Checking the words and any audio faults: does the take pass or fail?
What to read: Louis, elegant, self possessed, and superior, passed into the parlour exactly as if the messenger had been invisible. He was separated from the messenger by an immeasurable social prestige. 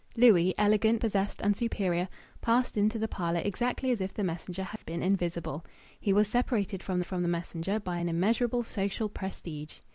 fail